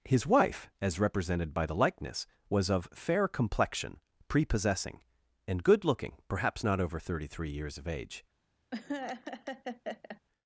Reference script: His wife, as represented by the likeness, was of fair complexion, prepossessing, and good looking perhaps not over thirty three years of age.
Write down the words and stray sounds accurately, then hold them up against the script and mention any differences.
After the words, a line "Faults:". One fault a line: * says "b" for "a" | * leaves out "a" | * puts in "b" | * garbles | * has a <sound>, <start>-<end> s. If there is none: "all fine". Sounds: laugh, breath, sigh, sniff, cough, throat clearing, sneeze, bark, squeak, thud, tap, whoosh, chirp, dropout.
His wife, as represented by the likeness, was of fair complexion, prepossessing, and good looking perhaps not over thirty three years of age.
Faults:
* has a laugh, 8.7-10.2 s